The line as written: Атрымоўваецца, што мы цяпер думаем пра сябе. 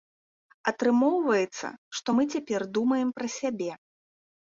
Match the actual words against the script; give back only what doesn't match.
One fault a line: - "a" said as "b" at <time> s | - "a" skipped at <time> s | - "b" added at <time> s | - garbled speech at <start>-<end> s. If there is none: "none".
none